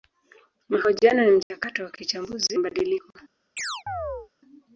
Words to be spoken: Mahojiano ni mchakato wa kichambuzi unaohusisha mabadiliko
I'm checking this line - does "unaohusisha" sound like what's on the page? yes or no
no